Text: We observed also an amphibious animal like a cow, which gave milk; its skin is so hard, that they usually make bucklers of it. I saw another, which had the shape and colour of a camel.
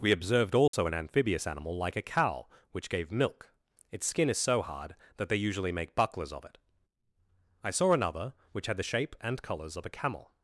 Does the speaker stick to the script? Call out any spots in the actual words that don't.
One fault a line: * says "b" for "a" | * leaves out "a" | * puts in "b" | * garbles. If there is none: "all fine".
* says "colours" for "colour"